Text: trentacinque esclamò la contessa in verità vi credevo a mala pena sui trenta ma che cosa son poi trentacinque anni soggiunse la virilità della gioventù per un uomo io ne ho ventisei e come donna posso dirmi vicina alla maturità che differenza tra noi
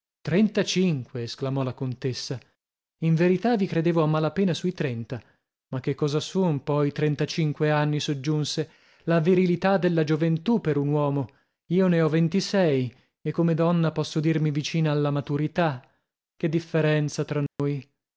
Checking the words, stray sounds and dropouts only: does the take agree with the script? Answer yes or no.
no